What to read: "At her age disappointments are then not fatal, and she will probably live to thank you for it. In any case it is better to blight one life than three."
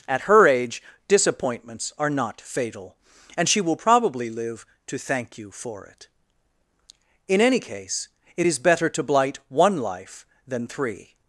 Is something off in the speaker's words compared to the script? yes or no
yes